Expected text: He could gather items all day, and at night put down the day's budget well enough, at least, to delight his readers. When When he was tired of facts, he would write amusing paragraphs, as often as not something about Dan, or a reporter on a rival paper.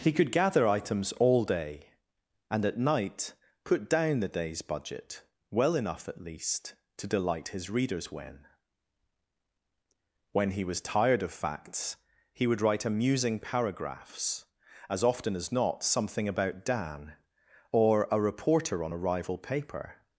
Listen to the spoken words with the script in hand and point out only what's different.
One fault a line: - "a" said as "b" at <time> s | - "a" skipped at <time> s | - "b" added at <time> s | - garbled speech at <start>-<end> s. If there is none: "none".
none